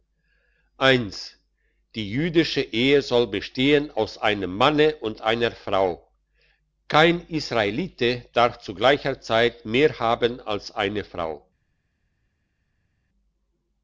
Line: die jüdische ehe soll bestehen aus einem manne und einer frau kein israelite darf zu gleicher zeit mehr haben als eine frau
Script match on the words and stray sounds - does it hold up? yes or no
yes